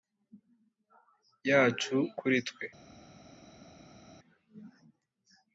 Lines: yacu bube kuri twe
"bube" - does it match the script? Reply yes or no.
no